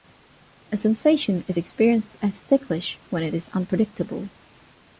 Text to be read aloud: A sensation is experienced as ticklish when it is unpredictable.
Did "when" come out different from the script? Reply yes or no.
no